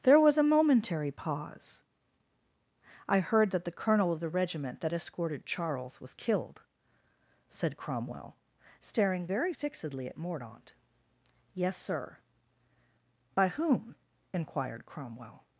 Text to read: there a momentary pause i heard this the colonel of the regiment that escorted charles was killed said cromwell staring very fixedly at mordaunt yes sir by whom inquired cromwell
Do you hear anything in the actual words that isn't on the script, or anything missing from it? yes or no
yes